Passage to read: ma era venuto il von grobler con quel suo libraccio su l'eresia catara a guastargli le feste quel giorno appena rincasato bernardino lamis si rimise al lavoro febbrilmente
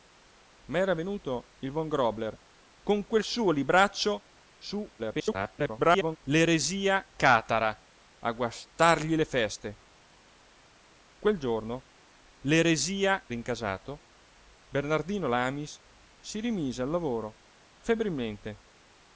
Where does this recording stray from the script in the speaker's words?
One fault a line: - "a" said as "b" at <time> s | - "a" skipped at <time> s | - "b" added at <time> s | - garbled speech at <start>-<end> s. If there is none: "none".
- garbled speech at 5.0-6.2 s
- "appena" said as "l'eresia" at 12.4 s